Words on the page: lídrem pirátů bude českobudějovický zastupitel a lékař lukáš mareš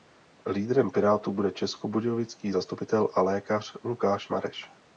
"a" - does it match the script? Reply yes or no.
yes